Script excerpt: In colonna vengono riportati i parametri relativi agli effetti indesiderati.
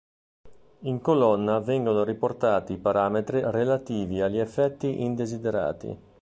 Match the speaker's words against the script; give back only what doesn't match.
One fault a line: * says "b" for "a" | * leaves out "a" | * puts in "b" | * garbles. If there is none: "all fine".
all fine